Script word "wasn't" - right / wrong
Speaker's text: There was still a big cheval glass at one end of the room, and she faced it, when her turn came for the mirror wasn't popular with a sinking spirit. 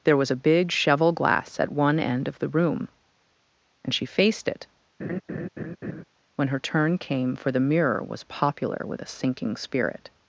wrong